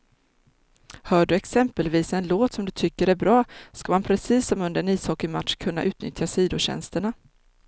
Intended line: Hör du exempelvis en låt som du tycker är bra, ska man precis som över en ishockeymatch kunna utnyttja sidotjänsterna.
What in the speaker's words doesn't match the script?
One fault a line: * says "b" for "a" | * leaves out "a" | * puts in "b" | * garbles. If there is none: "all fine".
* says "under" for "över"